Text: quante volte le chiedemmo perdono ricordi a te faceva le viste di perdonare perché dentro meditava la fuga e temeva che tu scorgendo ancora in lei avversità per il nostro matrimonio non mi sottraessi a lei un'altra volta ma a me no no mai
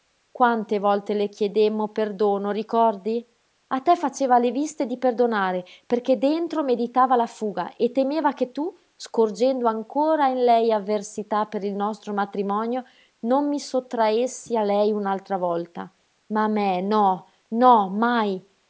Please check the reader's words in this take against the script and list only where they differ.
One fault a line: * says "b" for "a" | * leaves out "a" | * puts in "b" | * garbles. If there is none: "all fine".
all fine